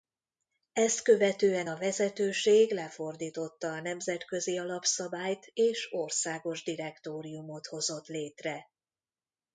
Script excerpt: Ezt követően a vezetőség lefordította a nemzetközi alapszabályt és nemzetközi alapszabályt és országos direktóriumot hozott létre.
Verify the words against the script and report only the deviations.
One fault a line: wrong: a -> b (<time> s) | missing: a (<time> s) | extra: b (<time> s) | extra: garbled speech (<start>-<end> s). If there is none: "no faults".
missing: nemzetközi alapszabályt és (5.9 s)